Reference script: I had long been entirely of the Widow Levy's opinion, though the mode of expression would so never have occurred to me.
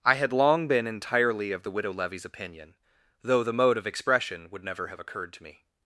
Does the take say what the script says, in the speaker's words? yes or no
no